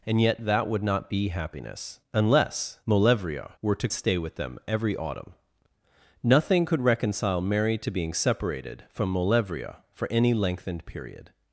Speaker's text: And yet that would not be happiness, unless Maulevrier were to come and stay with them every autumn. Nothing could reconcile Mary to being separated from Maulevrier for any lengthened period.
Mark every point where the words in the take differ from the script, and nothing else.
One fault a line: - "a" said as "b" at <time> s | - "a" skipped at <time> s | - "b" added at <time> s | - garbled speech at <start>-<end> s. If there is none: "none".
- "come and" skipped at 3.9 s